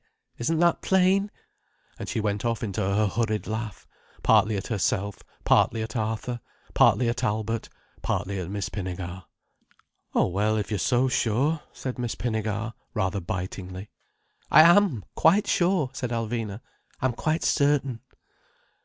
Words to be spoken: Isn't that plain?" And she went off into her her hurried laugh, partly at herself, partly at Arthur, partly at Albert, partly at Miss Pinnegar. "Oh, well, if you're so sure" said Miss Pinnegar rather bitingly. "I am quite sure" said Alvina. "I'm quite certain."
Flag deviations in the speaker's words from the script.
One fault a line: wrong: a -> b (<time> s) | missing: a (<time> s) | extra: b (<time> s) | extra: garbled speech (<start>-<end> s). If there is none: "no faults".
missing: her (3.0 s)